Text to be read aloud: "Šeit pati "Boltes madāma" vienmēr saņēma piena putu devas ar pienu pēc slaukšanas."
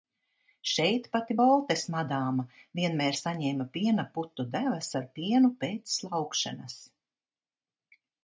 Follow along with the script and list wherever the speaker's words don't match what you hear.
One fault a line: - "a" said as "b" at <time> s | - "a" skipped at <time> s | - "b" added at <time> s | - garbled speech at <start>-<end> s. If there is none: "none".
none